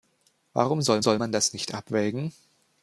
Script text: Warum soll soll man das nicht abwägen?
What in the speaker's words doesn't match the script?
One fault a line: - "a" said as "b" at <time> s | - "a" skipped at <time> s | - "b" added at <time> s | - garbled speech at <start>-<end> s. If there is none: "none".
none